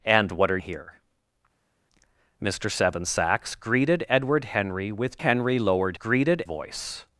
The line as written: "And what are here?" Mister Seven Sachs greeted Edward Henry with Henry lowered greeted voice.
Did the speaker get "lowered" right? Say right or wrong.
right